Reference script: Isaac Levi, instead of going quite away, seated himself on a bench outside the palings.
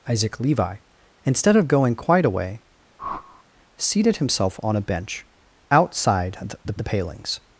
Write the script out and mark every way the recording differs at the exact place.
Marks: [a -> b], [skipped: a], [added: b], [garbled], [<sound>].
Isaac Levi, instead of going quite away, [whoosh] seated himself on a bench outside the [added: the] palings.